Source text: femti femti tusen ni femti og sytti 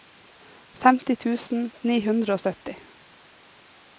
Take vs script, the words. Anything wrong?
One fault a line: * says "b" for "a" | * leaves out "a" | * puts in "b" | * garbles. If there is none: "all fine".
* leaves out "femti"
* says "hundre" for "femti"